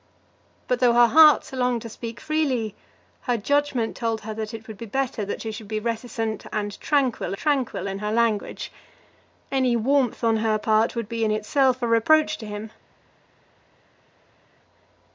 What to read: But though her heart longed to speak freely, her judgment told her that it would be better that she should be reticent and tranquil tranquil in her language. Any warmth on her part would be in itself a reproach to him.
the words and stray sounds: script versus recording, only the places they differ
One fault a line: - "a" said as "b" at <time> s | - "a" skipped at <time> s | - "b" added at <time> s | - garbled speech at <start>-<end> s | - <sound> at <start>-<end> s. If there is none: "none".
none